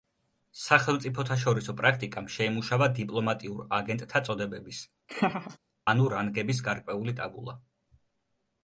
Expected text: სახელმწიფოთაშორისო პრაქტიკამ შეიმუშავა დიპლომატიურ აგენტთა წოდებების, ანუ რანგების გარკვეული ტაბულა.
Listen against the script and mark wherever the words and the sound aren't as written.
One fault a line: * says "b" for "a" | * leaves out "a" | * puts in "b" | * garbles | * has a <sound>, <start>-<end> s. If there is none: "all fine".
* has a laugh, 5.1-5.6 s